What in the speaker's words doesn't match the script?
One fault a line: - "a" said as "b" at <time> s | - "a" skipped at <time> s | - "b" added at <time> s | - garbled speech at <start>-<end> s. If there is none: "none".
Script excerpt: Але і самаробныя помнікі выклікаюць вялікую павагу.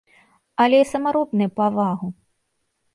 - "помнікі выклікаюць вялікую" skipped at 1.5 s